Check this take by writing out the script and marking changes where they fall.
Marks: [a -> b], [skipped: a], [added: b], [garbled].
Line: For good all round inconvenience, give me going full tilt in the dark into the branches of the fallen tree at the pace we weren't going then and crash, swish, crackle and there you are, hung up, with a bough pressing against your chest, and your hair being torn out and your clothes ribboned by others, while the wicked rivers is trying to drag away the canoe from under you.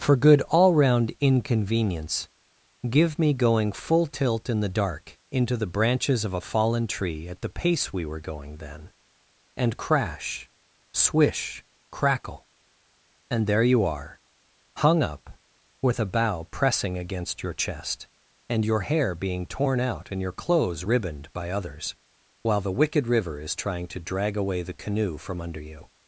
For good all round inconvenience, give me going full tilt in the dark into the branches of [the -> a] fallen tree at the pace we [weren't -> were] going then and crash, swish, crackle and there you are, hung up, with a bough pressing against your chest, and your hair being torn out and your clothes ribboned by others, while the wicked [rivers -> river] is trying to drag away the canoe from under you.